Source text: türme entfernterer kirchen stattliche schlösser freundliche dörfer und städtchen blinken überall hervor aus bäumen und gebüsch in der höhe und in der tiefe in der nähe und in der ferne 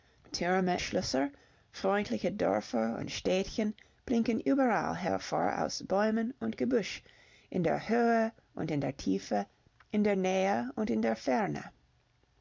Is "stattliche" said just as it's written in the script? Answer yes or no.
no